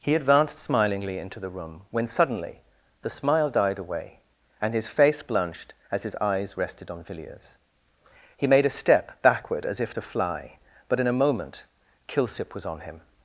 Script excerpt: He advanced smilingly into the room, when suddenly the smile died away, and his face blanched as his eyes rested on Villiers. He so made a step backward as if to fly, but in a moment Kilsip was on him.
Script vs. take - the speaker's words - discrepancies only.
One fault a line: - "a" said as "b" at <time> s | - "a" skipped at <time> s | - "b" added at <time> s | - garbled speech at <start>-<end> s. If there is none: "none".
- "so" skipped at 8.5 s